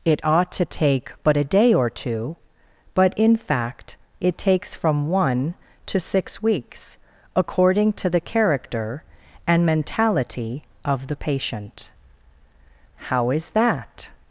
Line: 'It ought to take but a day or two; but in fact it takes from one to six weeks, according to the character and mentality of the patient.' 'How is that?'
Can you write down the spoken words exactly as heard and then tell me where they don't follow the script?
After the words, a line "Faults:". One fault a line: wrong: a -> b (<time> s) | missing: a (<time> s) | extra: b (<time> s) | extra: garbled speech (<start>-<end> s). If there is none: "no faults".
'It ought to take but a day or two; but in fact it takes from one to six weeks, according to the character and mentality of the patient.' 'How is that?'
Faults:
no faults